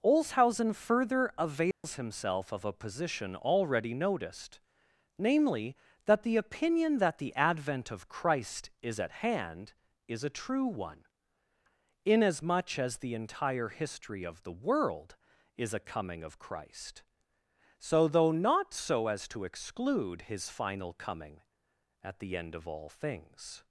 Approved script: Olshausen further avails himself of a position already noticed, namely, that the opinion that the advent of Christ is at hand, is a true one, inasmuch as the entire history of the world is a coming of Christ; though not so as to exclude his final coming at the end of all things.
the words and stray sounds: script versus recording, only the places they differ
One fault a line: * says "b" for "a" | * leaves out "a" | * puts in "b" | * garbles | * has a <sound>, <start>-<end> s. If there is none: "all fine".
* has a dropout, 1.7-1.8 s
* puts in "so"